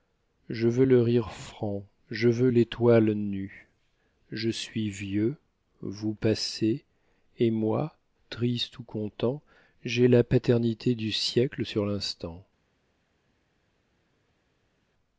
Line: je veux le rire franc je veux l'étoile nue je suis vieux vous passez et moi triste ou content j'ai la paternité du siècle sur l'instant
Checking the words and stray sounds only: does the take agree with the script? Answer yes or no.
yes